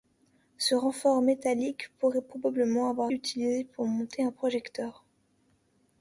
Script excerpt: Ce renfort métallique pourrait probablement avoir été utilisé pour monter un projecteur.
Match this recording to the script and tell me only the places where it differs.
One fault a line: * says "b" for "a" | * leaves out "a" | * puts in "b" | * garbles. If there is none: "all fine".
* leaves out "été"